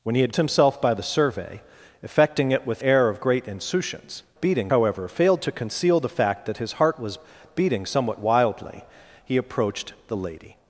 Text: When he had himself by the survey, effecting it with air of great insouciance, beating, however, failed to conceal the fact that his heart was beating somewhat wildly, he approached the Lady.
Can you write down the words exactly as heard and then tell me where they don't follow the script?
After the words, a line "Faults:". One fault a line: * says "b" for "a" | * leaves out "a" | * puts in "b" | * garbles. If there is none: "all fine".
When he had himself by the survey, effecting it with air of great insouciance, beating, however, failed to conceal the fact that his heart was beating somewhat wildly, he approached the Lady.
Faults:
all fine